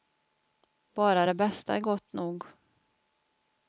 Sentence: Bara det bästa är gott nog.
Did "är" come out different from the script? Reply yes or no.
no